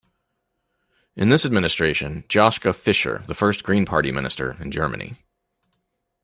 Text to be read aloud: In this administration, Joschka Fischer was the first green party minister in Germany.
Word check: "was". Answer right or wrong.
wrong